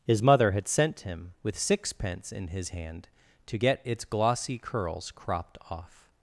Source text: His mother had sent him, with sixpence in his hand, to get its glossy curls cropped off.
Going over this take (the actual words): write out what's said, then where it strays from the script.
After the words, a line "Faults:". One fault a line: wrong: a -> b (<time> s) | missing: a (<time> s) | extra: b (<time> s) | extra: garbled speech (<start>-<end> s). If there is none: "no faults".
His mother had sent him, with sixpence in his hand, to get its glossy curls cropped off.
Faults:
no faults